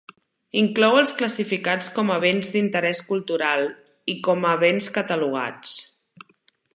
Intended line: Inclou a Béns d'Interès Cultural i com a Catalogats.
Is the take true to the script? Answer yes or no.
no